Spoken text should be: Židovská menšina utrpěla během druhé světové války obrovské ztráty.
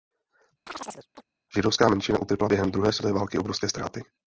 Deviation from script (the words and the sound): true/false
true